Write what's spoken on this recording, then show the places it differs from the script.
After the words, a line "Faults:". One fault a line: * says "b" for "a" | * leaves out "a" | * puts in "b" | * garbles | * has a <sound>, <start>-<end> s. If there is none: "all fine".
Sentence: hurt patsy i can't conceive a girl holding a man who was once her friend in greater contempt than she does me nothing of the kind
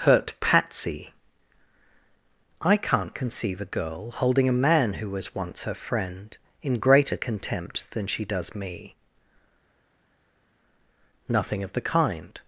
hurt patsy i can't conceive a girl holding a man who was once her friend in greater contempt than she does me nothing of the kind
Faults:
all fine